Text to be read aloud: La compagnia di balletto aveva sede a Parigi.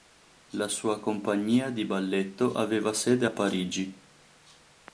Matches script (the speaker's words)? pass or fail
fail